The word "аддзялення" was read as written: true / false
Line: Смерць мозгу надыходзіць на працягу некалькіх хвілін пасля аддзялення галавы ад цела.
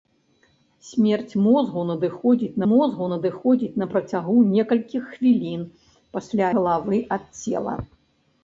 false